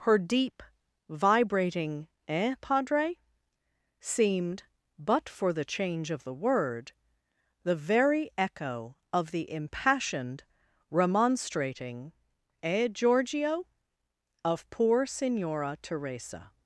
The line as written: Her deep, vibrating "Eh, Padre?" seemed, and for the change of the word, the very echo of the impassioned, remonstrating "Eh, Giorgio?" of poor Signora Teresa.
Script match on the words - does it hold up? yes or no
no